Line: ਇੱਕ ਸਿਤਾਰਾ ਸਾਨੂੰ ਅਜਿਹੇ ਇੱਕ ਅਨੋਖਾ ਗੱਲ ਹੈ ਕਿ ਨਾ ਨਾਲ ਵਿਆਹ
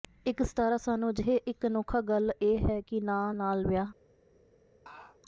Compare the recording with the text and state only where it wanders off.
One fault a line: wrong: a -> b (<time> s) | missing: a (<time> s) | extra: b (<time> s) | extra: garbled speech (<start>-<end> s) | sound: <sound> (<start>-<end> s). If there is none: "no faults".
extra: ਇਹ (2.4 s)
sound: laugh (4.9-5.2 s)